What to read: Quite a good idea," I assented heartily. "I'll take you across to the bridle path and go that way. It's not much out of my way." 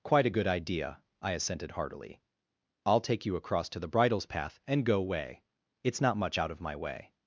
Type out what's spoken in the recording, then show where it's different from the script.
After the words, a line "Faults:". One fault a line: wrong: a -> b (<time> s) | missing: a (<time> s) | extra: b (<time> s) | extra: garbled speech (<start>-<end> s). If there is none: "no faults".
Quite a good idea," I assented heartily. "I'll take you across to the bridles path and go way. It's not much out of my way."
Faults:
wrong: bridle -> bridles (3.9 s)
missing: that (5.0 s)